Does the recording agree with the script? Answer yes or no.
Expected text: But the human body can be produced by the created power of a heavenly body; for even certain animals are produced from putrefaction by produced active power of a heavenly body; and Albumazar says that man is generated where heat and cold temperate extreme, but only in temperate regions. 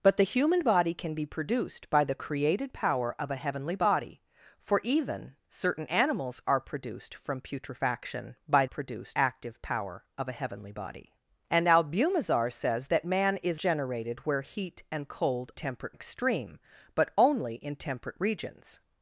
yes